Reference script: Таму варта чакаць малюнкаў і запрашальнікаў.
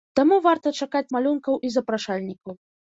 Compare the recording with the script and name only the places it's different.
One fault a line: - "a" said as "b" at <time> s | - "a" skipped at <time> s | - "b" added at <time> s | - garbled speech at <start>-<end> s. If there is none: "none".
none